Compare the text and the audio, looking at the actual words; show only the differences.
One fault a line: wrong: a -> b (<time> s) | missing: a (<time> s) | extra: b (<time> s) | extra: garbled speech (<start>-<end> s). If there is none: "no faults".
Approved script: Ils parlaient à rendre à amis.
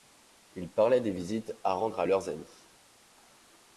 extra: des visites (1.0 s)
extra: leurs (2.1 s)